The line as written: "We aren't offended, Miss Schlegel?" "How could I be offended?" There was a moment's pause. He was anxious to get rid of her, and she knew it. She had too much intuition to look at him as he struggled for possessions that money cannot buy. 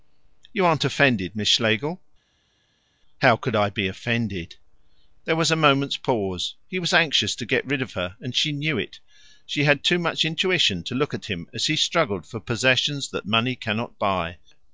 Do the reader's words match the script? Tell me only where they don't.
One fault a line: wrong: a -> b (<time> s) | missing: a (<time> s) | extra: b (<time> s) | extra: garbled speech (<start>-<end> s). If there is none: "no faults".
wrong: We -> You (0.5 s)